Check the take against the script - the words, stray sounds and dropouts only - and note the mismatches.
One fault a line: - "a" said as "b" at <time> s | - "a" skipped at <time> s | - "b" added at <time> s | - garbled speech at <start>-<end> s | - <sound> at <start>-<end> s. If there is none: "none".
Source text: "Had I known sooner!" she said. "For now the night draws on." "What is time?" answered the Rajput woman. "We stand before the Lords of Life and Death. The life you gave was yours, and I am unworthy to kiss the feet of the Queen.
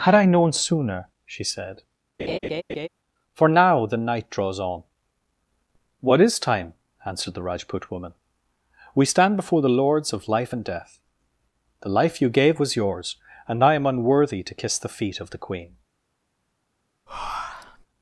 - laugh at 2.2-2.9 s
- breath at 17.1-17.9 s